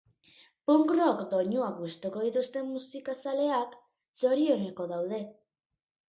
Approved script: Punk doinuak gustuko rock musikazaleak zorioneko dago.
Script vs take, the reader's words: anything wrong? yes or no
yes